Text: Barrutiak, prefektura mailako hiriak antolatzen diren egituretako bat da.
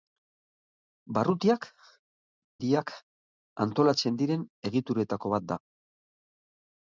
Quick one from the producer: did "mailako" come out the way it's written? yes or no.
no